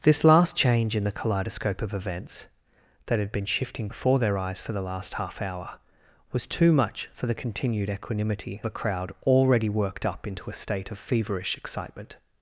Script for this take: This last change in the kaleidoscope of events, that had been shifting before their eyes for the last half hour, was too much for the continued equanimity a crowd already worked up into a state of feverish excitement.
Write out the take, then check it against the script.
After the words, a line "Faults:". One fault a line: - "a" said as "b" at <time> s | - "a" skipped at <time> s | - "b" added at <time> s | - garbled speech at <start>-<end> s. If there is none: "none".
This last change in the kaleidoscope of events, that had been shifting before their eyes for the last half hour, was too much for the continued equanimity a crowd already worked up into a state of feverish excitement.
Faults:
none